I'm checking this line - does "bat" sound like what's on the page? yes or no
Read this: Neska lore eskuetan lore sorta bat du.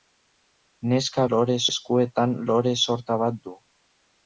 yes